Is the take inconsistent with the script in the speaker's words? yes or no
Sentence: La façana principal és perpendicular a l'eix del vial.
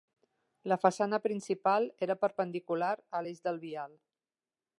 yes